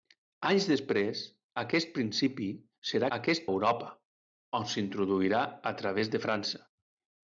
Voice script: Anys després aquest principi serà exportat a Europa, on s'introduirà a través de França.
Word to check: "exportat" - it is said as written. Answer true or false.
false